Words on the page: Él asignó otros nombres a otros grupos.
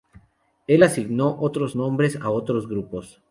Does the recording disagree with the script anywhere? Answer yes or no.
no